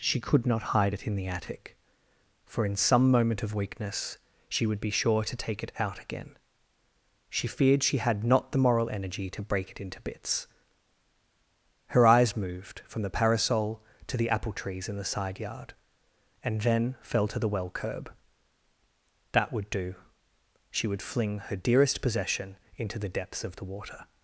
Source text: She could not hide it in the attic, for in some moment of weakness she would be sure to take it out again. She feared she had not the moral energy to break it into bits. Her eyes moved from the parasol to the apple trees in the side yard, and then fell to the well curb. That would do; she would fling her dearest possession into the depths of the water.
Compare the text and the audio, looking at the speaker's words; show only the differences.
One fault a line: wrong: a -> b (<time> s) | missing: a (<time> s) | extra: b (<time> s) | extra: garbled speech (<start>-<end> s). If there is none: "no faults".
no faults